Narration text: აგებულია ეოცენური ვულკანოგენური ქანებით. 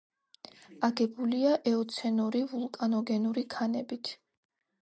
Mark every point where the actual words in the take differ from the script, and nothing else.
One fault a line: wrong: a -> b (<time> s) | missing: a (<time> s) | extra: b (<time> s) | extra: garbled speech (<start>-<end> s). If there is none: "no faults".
no faults